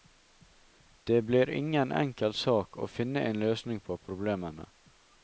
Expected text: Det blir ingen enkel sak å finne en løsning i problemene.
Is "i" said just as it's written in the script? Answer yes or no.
no